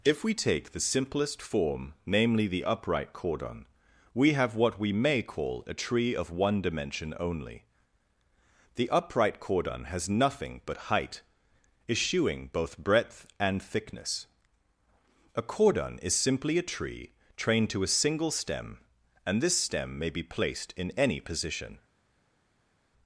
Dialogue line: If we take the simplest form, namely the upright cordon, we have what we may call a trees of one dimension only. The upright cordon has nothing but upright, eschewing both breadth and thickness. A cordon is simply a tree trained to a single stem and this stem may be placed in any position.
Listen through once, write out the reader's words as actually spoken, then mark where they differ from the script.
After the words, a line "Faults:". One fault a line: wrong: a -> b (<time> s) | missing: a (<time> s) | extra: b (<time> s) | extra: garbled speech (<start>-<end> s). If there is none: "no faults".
If we take the simplest form, namely the upright cordon, we have what we may call a tree of one dimension only. The upright cordon has nothing but height, eschewing both breadth and thickness. A cordon is simply a tree trained to a single stem and this stem may be placed in any position.
Faults:
wrong: trees -> tree (5.8 s)
wrong: upright -> height (10.9 s)